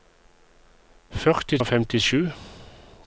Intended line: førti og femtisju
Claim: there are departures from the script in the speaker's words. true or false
false